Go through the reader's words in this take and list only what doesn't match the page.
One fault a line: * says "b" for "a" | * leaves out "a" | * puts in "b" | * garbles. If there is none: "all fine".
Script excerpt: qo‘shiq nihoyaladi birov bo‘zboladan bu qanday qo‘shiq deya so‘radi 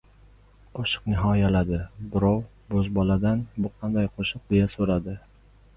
all fine